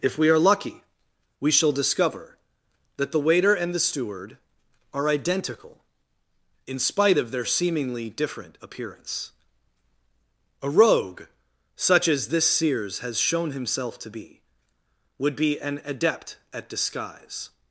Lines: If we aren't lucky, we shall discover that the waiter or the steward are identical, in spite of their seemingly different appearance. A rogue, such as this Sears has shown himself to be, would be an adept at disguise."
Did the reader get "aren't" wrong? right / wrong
wrong